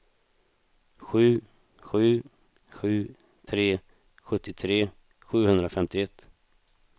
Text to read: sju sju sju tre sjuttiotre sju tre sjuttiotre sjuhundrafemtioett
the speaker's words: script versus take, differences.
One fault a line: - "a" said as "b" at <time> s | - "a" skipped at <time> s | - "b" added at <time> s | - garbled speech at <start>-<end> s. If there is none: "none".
- "sju tre sjuttiotre" skipped at 4.8 s